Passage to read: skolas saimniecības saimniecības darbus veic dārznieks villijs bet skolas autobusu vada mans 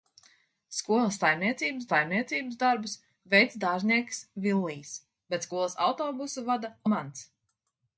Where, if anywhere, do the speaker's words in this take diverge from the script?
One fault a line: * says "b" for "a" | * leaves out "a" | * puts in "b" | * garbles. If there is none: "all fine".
all fine